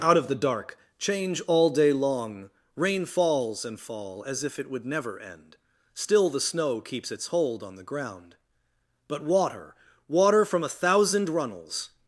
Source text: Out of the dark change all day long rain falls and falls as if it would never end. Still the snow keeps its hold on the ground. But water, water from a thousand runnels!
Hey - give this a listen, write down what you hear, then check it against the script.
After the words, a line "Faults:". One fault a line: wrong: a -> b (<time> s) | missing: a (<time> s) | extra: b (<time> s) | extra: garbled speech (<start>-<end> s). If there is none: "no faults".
Out of the dark change all day long rain falls and fall as if it would never end. Still the snow keeps its hold on the ground. But water, water from a thousand runnels!
Faults:
wrong: falls -> fall (3.8 s)